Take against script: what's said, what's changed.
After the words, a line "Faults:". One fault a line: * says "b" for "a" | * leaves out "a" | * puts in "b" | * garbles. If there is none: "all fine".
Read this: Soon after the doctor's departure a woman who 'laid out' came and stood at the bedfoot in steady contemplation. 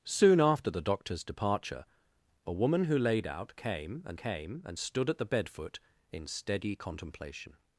Soon after the doctor's departure a woman who 'laid out' came and came and stood at the bedfoot in steady contemplation.
Faults:
* puts in "came and"